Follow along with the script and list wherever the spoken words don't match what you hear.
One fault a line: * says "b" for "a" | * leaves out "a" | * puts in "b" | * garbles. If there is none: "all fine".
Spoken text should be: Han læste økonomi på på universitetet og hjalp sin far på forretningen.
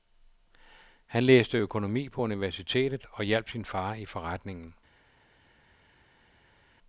* leaves out "på"
* says "i" for "på"